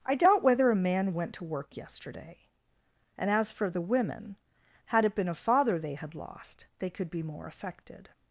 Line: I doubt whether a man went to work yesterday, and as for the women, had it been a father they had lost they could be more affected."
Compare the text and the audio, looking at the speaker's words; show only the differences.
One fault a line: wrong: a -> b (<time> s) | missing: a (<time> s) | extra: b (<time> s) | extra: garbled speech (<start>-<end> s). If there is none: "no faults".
no faults